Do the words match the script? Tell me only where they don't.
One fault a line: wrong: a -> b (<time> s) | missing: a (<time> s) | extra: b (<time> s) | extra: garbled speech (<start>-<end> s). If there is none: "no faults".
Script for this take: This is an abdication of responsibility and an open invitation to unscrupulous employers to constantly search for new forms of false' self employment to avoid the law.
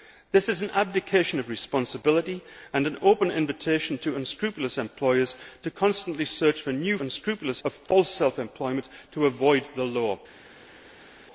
wrong: forms -> unscrupulous (7.0 s)